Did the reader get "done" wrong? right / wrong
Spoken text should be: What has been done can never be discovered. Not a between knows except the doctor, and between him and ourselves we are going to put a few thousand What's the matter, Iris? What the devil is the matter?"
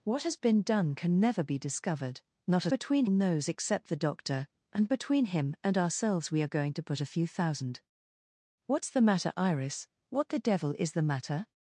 right